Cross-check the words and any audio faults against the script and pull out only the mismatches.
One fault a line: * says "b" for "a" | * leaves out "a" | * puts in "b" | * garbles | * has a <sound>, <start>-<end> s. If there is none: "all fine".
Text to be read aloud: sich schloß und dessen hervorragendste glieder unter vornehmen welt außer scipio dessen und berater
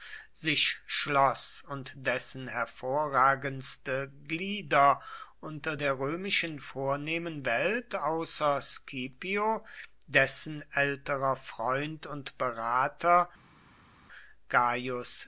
* puts in "der römischen"
* puts in "älterer freund"